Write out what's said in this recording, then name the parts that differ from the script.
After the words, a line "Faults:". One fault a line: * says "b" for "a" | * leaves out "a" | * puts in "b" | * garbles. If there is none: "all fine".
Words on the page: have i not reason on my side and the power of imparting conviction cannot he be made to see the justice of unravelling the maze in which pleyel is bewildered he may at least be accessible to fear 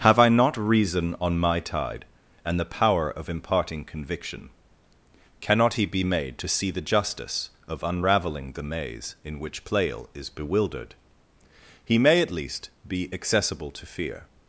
have i not reason on my tide and the power of imparting conviction cannot he be made to see the justice of unravelling the maze in which pleyel is bewildered he may at least be accessible to fear
Faults:
* says "tide" for "side"